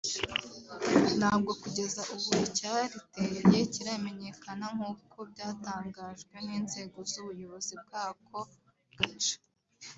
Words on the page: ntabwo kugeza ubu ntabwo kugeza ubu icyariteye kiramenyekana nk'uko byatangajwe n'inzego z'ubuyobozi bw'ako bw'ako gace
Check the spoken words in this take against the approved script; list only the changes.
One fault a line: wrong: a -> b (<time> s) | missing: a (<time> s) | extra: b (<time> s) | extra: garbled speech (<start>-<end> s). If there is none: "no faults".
missing: ntabwo kugeza ubu (2.3 s)
missing: bw'ako (8.4 s)